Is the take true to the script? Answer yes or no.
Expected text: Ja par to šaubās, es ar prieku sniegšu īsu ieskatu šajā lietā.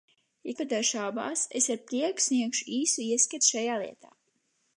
yes